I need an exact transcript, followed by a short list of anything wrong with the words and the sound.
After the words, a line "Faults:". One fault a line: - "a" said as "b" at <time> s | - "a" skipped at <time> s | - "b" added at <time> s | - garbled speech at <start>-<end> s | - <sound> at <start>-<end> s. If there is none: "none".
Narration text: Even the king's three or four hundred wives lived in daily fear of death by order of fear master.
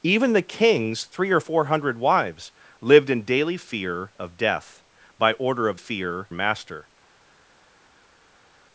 Even the king's three or four hundred wives lived in daily fear of death by order of fear master.
Faults:
none